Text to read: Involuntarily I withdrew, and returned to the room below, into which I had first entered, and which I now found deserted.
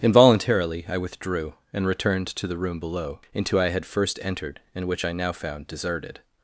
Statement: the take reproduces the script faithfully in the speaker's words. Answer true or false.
false